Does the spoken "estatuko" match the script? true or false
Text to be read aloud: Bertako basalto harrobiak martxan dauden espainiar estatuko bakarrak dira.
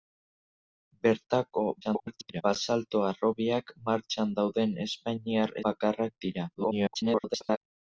false